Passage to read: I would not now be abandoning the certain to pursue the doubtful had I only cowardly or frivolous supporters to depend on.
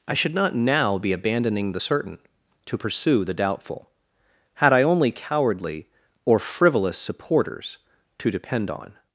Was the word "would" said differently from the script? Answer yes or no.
yes